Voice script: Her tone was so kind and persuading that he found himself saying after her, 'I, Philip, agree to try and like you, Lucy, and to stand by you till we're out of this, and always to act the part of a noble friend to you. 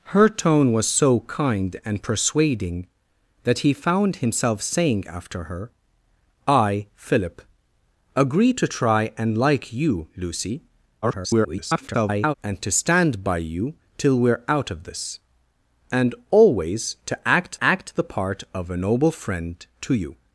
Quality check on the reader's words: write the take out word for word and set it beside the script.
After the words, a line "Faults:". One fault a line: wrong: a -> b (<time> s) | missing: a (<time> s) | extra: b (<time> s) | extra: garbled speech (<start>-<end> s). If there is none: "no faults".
Her tone was so kind and persuading that he found himself saying after her, 'I, Philip, agree to try and like you, Lucy, [garbled] and to stand by you till we're out of this, and always to act act the part of a noble friend to you.
Faults:
extra: garbled speech (11.0-12.3 s)
extra: act (17.6 s)